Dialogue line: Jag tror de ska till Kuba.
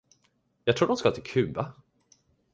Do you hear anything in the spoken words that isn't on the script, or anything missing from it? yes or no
no